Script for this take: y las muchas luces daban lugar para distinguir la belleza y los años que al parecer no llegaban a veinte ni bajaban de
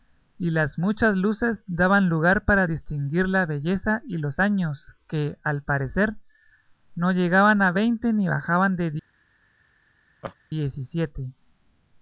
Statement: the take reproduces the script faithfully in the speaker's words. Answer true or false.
true